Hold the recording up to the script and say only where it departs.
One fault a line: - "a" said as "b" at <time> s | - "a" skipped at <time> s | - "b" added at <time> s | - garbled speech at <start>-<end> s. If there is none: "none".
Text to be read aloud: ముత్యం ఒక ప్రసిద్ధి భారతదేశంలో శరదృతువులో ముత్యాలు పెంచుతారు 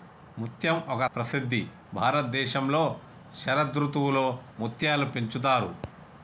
none